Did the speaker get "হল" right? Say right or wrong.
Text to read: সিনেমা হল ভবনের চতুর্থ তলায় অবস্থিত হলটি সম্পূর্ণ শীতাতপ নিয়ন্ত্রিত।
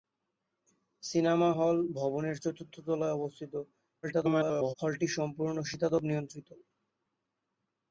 right